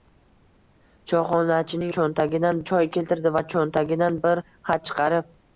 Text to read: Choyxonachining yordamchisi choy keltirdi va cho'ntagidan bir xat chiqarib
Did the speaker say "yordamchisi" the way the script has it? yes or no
no